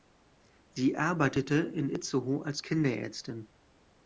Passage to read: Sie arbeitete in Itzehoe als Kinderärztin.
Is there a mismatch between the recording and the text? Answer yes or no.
no